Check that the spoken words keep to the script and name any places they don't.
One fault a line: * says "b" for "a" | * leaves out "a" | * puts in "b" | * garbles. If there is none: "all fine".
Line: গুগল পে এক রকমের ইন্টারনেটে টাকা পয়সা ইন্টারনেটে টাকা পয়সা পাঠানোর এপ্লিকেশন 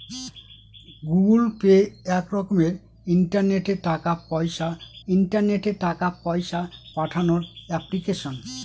all fine